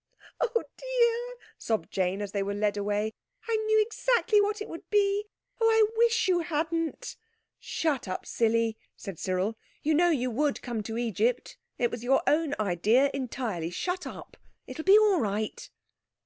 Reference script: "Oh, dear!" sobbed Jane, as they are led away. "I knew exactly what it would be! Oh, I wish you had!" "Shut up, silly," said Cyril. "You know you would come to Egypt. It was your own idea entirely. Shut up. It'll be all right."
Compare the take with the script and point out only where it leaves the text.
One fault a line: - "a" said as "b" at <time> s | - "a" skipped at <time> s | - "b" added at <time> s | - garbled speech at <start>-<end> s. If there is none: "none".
- "are" said as "were" at 2.4 s
- "had" said as "hadn't" at 6.4 s